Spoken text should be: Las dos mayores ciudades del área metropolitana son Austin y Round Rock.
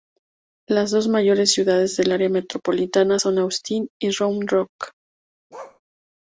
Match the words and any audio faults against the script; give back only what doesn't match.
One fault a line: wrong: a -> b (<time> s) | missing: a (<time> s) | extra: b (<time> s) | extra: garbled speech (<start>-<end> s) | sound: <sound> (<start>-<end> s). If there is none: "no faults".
sound: bark (5.5-5.8 s)